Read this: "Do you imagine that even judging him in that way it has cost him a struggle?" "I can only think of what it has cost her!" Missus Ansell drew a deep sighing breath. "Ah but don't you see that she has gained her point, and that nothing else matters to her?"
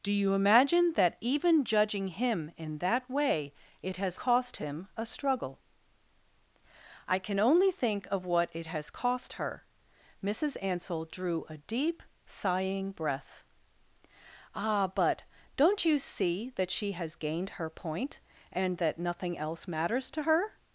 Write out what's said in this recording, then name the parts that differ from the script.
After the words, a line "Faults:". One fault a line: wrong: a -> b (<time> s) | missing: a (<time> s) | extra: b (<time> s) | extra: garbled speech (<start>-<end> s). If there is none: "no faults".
"Do you imagine that even judging him in that way it has cost him a struggle?" "I can only think of what it has cost her!" Missus Ansell drew a deep sighing breath. "Ah but don't you see that she has gained her point, and that nothing else matters to her?"
Faults:
no faults